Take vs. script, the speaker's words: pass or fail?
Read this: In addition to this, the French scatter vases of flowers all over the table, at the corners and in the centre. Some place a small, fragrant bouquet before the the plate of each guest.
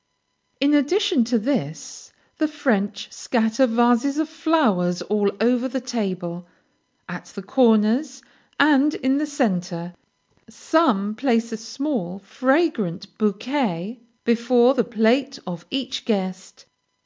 fail